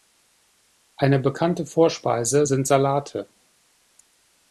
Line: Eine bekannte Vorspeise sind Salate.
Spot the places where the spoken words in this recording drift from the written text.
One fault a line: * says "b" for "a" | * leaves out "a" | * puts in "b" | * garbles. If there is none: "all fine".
all fine